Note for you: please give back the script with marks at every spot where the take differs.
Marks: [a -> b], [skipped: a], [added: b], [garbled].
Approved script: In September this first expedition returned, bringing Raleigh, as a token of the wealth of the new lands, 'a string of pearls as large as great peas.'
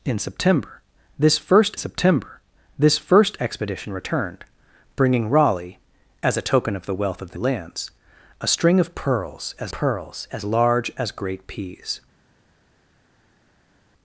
In September this first [added: September this first] expedition returned, bringing Raleigh, as a token of the wealth of the [skipped: new] lands, 'a string of pearls as [added: pearls as] large as great peas.'